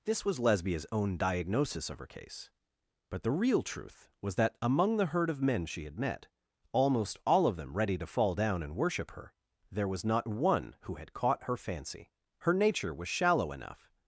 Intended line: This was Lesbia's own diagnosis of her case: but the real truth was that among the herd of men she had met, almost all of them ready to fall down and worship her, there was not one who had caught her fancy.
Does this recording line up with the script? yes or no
no